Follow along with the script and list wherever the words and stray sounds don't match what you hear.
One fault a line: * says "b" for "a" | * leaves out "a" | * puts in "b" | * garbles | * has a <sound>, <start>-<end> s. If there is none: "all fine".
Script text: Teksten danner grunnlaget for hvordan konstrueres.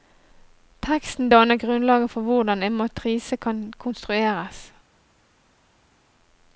* puts in "en matrise kan"